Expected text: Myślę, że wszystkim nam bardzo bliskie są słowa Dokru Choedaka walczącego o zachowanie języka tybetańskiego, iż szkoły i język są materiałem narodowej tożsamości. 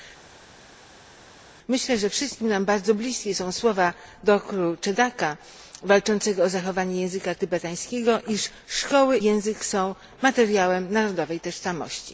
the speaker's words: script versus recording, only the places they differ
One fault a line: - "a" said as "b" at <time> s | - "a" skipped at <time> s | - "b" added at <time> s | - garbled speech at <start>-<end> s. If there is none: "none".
- "i" skipped at 9.2 s